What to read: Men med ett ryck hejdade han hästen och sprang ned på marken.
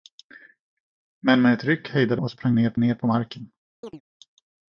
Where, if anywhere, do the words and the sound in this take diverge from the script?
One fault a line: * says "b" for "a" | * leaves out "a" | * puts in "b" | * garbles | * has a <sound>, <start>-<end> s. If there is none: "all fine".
* leaves out "han hästen"
* puts in "ned"
* has a chirp, 3.8-4.0 s